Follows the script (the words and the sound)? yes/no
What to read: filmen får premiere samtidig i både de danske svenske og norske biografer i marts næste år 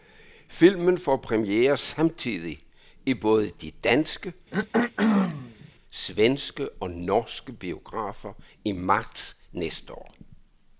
no